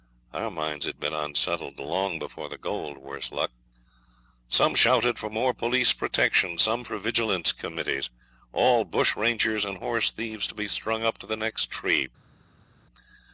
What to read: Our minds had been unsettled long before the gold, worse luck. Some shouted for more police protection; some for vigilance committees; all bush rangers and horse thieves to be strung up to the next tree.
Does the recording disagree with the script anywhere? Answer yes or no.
no